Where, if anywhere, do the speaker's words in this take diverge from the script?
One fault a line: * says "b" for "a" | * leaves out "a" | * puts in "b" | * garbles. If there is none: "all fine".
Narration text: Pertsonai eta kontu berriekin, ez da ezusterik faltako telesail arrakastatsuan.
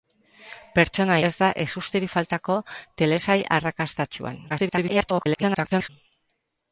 * leaves out "eta kontu berriekin"
* garbles